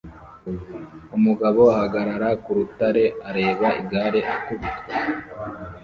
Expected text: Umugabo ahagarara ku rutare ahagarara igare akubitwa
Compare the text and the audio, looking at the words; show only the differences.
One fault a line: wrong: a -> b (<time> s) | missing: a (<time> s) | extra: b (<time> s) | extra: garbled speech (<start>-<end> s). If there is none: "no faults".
wrong: ahagarara -> areba (3.3 s)